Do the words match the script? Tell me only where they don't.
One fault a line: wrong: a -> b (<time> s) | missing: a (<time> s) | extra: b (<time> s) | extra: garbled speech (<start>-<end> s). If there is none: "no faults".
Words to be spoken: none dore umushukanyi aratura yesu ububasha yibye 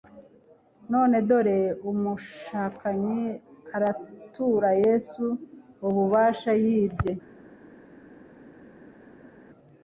no faults